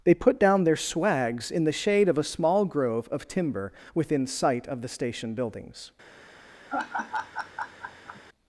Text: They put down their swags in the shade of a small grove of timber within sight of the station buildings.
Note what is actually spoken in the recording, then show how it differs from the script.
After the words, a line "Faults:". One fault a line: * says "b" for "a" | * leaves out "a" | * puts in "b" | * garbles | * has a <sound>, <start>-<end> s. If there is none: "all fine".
They put down their swags in the shade of a small grove of timber within sight of the station buildings.
Faults:
* has a laugh, 6.7-8.2 s